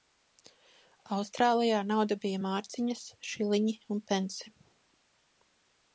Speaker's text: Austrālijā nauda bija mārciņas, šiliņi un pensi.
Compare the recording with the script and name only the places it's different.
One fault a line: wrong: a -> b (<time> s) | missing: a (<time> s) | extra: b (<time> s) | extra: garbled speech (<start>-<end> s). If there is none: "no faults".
no faults